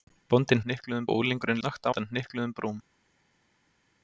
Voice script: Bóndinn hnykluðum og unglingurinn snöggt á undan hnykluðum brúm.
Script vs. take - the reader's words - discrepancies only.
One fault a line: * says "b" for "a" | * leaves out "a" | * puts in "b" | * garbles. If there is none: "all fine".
all fine